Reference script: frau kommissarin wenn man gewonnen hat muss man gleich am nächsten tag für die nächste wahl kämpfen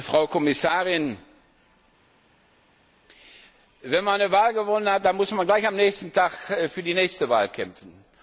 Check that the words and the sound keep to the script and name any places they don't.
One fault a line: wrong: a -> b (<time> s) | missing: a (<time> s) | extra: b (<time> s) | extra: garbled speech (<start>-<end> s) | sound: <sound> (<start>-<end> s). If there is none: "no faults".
extra: eine wahl (4.2 s)
extra: dann (5.0 s)